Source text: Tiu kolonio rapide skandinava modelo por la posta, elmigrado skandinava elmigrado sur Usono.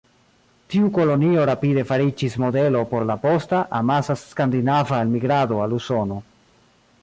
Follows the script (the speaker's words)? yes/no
no